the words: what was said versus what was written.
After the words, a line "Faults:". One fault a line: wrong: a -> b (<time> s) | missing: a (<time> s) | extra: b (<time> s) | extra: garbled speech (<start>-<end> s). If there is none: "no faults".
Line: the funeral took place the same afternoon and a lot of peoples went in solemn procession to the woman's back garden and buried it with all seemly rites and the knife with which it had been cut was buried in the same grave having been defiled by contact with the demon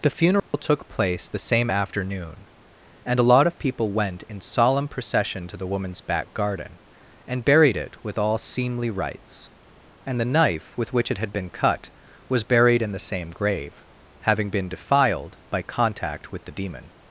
the funeral took place the same afternoon and a lot of people went in solemn procession to the woman's back garden and buried it with all seemly rites and the knife with which it had been cut was buried in the same grave having been defiled by contact with the demon
Faults:
wrong: peoples -> people (3.6 s)